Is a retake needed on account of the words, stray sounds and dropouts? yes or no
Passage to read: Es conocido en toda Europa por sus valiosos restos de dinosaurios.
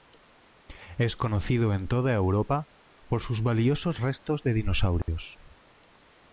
yes